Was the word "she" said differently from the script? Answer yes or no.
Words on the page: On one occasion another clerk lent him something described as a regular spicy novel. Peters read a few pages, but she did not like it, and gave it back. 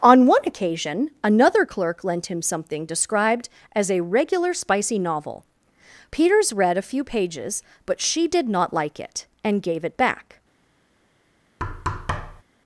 no